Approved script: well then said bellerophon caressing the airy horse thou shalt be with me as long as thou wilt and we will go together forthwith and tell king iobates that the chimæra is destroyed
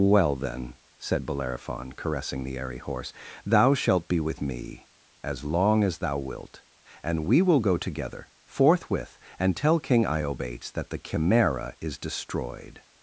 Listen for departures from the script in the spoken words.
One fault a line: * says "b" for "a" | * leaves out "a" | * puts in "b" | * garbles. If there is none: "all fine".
all fine